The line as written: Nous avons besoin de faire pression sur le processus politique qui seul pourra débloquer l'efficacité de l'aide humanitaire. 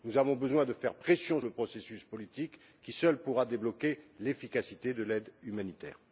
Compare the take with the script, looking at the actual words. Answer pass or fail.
fail